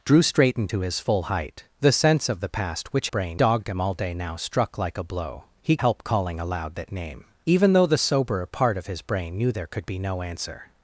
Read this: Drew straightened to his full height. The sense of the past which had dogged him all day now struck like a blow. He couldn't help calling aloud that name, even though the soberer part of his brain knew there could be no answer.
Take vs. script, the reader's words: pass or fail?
fail